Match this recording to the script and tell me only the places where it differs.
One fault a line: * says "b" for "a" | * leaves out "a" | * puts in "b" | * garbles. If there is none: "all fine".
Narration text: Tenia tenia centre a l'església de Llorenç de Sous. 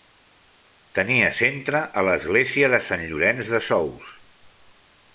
* leaves out "tenia"
* puts in "Sant"